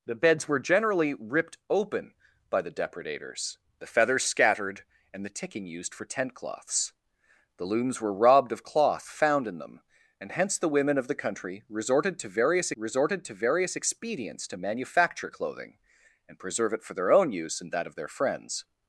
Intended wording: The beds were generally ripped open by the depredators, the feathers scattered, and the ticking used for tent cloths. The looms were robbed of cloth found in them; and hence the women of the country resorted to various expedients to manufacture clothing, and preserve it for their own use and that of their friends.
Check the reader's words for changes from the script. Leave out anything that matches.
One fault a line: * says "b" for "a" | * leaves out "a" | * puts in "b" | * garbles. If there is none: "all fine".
* puts in "resorted to various"